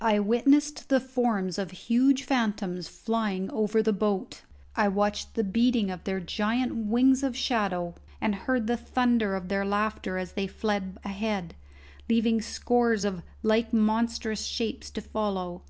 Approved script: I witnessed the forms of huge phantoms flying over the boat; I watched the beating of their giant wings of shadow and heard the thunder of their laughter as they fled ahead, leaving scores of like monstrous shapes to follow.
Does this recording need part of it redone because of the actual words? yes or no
no